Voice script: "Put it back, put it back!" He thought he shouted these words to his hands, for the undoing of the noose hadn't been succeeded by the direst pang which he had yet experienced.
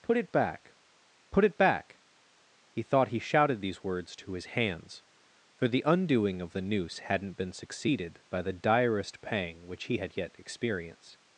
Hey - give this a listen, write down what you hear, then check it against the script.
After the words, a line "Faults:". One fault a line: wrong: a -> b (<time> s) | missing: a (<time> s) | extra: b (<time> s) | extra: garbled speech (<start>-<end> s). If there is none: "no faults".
"Put it back, put it back!" He thought he shouted these words to his hands, for the undoing of the noose hadn't been succeeded by the direst pang which he had yet experienced.
Faults:
no faults